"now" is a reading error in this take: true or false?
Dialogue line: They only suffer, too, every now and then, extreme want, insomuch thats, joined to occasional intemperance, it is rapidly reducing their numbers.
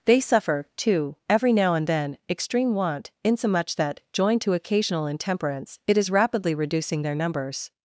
false